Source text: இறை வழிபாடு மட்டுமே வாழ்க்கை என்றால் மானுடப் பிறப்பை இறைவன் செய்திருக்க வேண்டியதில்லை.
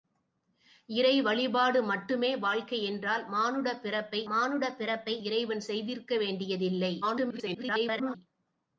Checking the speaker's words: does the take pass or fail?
fail